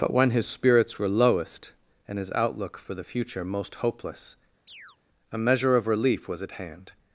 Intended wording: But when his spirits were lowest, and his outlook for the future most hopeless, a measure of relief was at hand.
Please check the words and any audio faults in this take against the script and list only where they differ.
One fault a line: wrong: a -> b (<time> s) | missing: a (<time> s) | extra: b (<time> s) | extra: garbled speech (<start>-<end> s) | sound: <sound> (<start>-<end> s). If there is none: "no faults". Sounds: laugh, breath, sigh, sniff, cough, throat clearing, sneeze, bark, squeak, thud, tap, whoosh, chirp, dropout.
sound: chirp (4.7-5.0 s)